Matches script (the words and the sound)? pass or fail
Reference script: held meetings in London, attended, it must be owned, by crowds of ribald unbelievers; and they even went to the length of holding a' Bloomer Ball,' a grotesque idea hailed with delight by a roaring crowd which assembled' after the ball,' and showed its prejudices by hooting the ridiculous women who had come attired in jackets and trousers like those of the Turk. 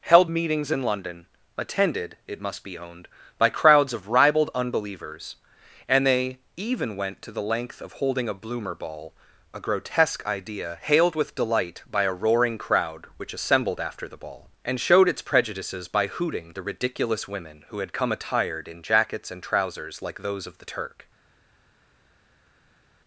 pass